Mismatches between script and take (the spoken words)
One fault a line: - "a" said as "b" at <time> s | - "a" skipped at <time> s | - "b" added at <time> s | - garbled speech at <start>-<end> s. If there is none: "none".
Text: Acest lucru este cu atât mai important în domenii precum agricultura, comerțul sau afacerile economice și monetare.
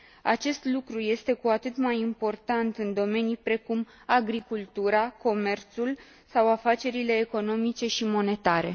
none